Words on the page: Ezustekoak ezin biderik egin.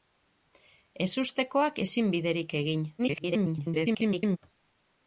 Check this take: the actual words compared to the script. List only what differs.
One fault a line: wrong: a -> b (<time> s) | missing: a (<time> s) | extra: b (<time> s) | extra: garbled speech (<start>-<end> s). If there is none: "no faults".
extra: garbled speech (3.0-4.4 s)